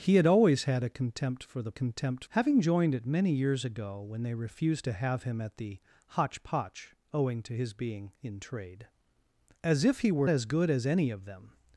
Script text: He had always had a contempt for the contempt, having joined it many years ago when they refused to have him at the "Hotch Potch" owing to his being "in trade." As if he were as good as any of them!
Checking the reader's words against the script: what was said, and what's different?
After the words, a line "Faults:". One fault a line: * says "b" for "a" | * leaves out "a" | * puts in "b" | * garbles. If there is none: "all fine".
He had always had a contempt for the contempt, having joined it many years ago when they refused to have him at the "Hotch Potch" owing to his being "in trade." As if he were as good as any of them!
Faults:
all fine